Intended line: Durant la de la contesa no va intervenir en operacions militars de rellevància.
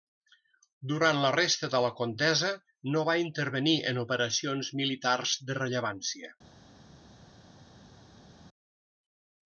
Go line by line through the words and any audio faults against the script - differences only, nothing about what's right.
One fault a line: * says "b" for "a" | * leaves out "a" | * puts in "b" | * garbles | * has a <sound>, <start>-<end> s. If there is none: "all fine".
* puts in "resta"